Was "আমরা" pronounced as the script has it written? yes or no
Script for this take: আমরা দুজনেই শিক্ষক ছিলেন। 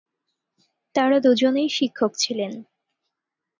no